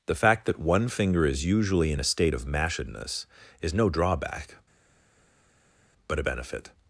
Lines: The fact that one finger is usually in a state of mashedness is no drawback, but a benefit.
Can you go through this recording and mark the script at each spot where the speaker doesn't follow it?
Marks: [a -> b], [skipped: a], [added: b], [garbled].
The fact that one finger is usually in a state of mashedness is no drawback, but a benefit.